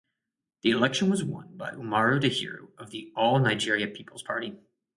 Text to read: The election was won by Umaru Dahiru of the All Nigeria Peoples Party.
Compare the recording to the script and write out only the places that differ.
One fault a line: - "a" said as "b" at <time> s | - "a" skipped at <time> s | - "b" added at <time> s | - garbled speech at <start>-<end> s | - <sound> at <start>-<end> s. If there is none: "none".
none